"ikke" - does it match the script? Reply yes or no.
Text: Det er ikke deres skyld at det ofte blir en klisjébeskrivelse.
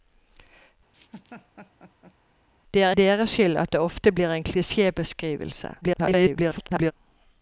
no